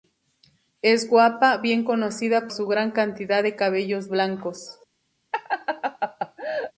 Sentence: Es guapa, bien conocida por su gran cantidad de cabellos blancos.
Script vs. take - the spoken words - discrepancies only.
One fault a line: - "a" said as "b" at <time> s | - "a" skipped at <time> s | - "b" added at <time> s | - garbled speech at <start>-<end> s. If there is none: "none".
- "por" skipped at 2.5 s